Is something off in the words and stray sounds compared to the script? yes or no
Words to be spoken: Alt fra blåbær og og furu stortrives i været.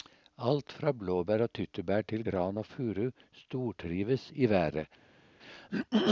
yes